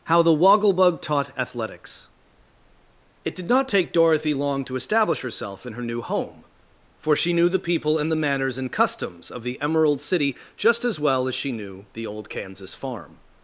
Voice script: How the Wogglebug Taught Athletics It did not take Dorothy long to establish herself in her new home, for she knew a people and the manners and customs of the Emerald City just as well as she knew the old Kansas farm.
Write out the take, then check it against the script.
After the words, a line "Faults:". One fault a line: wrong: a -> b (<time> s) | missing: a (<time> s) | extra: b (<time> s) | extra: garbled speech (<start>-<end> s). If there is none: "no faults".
How the Wogglebug Taught Athletics It did not take Dorothy long to establish herself in her new home, for she knew the people and the manners and customs of the Emerald City just as well as she knew the old Kansas farm.
Faults:
wrong: a -> the (7.5 s)